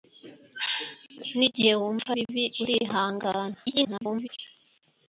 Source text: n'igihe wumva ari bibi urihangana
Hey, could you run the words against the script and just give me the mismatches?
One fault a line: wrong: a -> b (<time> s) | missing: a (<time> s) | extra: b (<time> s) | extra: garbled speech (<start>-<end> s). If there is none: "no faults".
missing: ari (2.1 s)
extra: garbled speech (3.7-4.3 s)